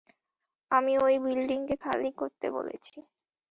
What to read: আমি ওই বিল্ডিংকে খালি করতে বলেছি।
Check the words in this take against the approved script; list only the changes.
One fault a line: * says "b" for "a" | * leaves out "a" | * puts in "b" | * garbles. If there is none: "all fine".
all fine